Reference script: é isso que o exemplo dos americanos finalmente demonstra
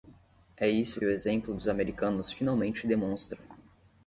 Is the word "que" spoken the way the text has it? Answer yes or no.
no